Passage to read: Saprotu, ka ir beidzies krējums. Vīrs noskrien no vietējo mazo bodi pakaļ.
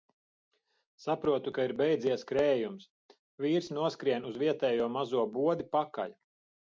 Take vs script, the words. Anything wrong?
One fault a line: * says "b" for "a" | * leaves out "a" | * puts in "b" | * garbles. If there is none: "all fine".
* says "uz" for "no"